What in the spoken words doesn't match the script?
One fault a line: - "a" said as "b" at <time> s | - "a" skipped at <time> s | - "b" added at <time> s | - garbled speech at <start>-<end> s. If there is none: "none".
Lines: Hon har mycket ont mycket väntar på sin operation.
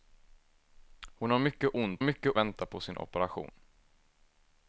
none